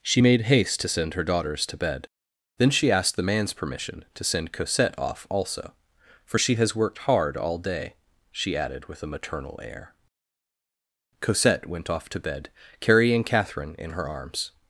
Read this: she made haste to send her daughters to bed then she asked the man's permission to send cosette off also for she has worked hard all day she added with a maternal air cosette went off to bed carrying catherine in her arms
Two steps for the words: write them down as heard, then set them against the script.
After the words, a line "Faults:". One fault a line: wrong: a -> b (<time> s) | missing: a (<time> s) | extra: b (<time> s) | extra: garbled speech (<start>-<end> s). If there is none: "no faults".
she made haste to send her daughters to bed then she asked the man's permission to send cosette off also for she has worked hard all day she added with a maternal air cosette went off to bed carrying catherine in her arms
Faults:
no faults